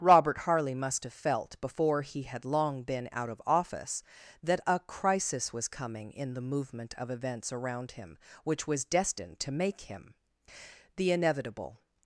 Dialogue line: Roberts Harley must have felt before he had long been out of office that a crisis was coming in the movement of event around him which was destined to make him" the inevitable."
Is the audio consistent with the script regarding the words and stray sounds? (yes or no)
no